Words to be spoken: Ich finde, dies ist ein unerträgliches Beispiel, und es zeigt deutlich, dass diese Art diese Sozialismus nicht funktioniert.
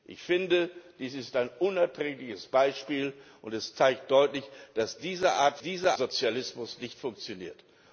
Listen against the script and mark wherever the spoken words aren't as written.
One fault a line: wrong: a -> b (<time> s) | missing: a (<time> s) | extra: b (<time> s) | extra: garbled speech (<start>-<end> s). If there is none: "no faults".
no faults